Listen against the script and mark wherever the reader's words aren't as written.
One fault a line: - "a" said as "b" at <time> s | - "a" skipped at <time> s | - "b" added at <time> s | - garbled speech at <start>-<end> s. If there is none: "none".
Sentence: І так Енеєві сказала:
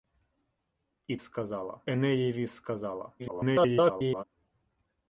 - "так" said as "сказала" at 1.1 s
- garbled speech at 3.2-4.2 s